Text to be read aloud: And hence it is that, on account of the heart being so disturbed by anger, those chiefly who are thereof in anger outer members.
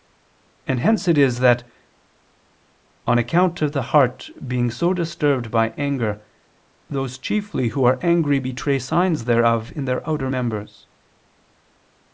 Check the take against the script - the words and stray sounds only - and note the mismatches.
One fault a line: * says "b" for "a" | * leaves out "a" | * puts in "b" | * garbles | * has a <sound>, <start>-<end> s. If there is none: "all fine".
* puts in "angry betray signs"
* says "their" for "anger"